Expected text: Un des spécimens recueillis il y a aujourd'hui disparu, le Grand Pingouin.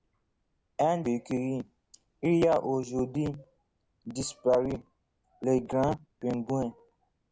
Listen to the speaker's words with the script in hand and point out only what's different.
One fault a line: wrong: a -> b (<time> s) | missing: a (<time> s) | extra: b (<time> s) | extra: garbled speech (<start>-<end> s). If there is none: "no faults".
missing: des spécimens (1.0 s)